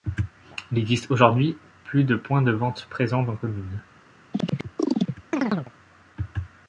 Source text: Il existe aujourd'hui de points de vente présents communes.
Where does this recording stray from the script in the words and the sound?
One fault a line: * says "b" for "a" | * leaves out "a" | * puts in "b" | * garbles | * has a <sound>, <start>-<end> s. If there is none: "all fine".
* puts in "plus"
* puts in "dans"
* has a chirp, 4.3-5.7 s